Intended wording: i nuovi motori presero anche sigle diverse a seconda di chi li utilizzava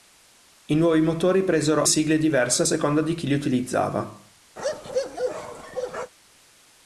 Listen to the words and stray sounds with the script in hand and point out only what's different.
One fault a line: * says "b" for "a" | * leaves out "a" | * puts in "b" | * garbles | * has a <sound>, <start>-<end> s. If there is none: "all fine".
* leaves out "anche"
* has a bark, 4.6-6.1 s